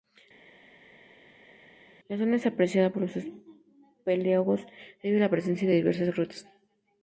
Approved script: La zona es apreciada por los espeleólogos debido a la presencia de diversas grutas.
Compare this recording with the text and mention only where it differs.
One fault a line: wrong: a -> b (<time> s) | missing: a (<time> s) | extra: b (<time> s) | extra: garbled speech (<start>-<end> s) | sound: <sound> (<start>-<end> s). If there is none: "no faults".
no faults